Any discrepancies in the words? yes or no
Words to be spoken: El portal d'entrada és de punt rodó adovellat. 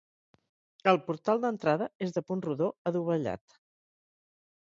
no